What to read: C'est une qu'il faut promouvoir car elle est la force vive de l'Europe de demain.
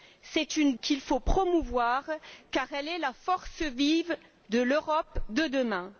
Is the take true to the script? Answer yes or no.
yes